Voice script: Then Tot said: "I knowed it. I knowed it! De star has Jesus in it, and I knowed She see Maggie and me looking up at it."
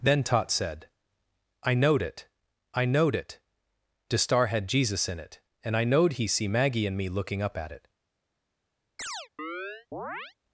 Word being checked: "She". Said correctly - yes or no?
no